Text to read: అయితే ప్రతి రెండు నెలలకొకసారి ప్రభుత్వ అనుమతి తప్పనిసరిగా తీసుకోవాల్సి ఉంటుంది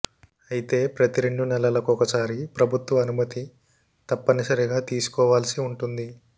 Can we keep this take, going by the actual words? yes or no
yes